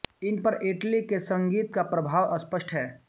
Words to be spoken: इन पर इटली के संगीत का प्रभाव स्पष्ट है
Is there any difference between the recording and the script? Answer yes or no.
no